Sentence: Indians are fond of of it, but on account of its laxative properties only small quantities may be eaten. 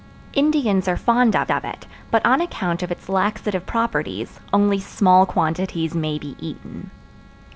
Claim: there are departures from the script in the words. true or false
false